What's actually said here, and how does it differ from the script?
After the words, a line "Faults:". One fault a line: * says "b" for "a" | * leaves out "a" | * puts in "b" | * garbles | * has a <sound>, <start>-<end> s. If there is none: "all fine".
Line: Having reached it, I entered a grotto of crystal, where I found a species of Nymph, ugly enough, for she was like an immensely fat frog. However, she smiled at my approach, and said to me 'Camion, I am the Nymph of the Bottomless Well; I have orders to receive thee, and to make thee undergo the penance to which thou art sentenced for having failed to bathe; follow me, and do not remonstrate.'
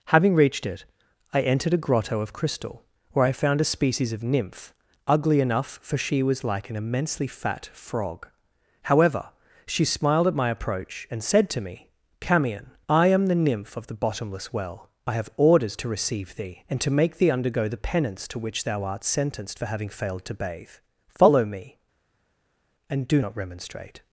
Having reached it, I entered a grotto of crystal, where I found a species of Nymph, ugly enough, for she was like an immensely fat frog. However, she smiled at my approach, and said to me 'Camion, I am the Nymph of the Bottomless Well; I have orders to receive thee, and to make thee undergo the penance to which thou art sentenced for having failed to bathe; follow me, and do not remonstrate.'
Faults:
all fine